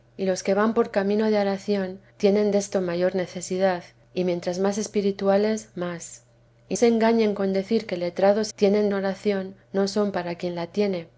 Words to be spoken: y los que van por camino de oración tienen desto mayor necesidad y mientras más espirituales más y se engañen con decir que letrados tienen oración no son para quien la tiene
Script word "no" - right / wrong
right